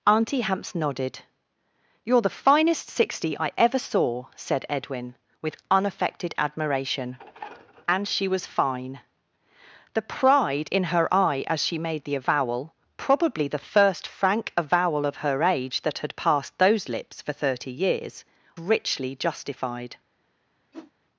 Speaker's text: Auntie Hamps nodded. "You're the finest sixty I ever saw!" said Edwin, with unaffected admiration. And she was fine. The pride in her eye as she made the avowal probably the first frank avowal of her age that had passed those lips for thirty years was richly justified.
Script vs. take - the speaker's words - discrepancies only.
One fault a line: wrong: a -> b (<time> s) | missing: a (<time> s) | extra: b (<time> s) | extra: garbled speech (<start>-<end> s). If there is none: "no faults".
missing: was (18.2 s)